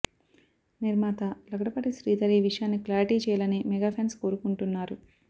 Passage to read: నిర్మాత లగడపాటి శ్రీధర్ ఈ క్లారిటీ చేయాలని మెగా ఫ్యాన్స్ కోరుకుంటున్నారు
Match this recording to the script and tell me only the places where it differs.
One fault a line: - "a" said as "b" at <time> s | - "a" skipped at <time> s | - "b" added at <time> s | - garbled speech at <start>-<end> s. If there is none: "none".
- "విషయాన్ని" added at 2.5 s